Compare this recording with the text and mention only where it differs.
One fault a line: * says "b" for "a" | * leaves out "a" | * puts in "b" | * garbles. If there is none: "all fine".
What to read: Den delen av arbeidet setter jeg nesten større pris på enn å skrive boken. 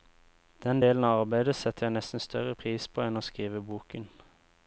all fine